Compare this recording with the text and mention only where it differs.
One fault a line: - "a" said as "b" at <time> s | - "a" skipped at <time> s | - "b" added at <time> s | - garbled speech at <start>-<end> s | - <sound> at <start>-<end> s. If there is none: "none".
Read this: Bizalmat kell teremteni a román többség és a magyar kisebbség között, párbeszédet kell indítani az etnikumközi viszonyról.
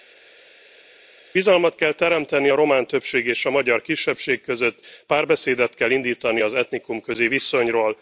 none